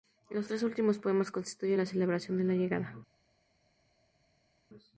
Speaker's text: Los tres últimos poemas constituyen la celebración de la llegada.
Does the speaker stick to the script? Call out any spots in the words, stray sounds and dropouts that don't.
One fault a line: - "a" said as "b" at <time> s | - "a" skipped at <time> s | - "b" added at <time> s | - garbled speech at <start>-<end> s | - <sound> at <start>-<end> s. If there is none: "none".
none